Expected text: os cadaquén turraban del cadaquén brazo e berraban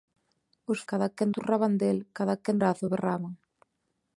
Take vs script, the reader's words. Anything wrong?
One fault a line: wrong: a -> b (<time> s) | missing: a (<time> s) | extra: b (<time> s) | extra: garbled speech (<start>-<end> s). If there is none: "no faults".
no faults